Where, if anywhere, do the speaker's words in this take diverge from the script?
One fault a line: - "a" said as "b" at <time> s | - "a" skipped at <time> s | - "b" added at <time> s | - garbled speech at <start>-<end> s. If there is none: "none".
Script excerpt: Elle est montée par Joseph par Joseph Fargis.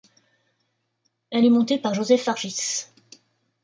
- "par Joseph" skipped at 2.2 s